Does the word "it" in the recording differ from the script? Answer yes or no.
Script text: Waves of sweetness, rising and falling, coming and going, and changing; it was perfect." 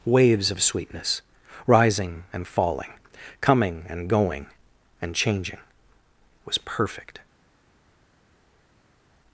yes